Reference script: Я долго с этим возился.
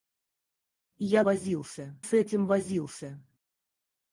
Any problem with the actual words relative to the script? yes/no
yes